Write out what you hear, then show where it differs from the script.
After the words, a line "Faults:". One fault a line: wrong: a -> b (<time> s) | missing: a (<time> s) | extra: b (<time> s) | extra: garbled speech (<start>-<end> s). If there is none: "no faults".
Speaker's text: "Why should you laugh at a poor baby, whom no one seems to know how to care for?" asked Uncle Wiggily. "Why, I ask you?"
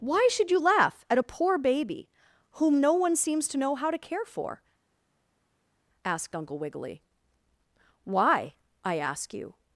"Why should you laugh at a poor baby, whom no one seems to know how to care for?" asked Uncle Wiggily. "Why, I ask you?"
Faults:
no faults